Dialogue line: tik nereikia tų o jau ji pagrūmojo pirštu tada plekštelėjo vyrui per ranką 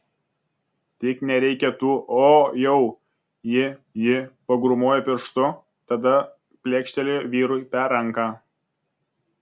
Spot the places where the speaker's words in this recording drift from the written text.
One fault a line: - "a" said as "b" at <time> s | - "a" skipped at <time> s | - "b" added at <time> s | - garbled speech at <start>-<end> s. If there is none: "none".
- "ji" added at 4.0 s